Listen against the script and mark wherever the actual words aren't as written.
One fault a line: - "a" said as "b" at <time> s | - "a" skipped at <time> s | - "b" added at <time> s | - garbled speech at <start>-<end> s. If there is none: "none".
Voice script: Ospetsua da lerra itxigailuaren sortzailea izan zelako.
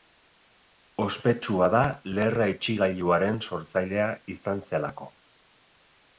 none